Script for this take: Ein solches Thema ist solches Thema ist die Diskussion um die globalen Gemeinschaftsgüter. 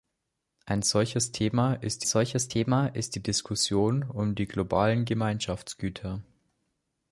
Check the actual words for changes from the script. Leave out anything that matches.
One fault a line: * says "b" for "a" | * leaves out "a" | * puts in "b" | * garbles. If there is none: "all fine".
all fine